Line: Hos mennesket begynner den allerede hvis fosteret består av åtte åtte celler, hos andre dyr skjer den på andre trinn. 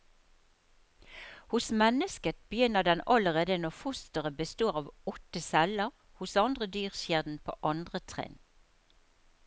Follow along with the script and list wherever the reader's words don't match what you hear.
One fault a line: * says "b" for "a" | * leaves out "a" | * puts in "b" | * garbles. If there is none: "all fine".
* says "når" for "hvis"
* leaves out "åtte"